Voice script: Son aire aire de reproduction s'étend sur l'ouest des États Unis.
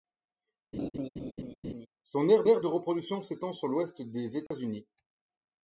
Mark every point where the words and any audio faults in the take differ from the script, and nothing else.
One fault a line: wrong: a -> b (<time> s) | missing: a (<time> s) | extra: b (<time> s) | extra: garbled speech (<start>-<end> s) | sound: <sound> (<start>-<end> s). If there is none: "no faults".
sound: laugh (0.7-1.9 s)
sound: dropout (4.5-4.5 s)